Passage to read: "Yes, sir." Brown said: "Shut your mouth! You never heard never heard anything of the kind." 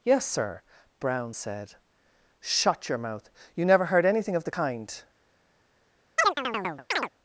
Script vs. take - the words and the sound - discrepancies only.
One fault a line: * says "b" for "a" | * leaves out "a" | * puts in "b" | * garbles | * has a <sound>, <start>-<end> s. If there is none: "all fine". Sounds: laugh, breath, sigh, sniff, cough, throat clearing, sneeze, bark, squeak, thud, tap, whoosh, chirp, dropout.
* leaves out "never heard"
* has a chirp, 6.2-7.1 s